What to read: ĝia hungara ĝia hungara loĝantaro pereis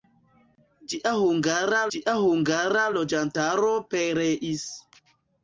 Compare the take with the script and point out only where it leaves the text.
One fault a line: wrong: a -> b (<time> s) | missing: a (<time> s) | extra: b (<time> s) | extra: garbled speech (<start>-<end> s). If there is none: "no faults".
no faults